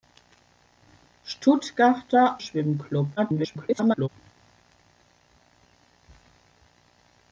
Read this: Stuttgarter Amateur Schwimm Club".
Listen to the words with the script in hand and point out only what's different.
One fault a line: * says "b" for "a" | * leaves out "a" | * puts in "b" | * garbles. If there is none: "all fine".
* leaves out "Amateur"
* garbles